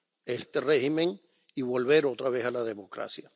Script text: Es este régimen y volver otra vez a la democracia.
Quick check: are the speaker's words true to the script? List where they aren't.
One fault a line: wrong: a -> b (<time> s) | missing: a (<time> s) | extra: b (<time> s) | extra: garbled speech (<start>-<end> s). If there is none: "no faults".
no faults